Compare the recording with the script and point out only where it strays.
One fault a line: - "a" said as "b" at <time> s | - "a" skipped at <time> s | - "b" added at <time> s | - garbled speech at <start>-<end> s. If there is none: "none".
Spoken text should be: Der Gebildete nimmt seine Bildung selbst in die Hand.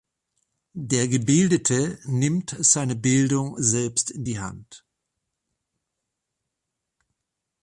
none